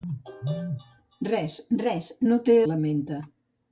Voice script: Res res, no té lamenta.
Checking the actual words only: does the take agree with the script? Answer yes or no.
yes